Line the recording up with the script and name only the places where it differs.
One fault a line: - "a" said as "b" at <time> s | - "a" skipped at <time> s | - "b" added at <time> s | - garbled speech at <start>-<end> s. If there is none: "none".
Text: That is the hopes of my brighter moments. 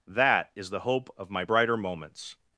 - "hopes" said as "hope" at 0.8 s